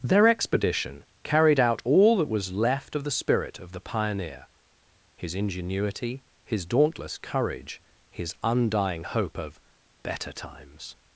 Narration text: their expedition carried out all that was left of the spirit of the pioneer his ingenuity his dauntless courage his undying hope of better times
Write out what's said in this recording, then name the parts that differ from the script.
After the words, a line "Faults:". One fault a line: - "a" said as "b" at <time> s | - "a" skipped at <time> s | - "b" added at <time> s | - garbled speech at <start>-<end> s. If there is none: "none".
their expedition carried out all that was left of the spirit of the pioneer his ingenuity his dauntless courage his undying hope of better times
Faults:
none